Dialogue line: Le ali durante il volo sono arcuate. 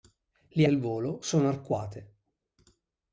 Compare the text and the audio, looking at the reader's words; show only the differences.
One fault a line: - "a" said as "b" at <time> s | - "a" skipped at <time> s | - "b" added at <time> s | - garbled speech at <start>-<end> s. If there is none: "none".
- "ali durante" skipped at 0.7 s